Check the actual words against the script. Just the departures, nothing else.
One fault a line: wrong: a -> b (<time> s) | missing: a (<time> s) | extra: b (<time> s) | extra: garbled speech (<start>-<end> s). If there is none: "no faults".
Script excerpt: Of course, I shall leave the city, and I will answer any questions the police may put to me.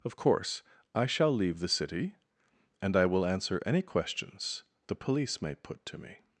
no faults